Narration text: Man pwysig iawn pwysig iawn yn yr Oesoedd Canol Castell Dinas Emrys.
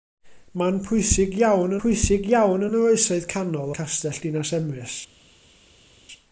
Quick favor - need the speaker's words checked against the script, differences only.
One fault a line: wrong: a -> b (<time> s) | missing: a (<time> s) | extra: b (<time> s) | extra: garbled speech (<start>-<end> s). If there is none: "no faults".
no faults